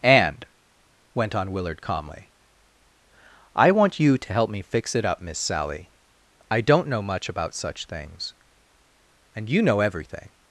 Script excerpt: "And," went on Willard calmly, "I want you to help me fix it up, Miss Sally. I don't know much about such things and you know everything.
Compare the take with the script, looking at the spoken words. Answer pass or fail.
pass